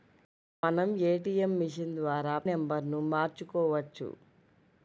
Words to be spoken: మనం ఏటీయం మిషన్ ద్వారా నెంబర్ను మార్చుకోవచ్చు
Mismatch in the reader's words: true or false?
false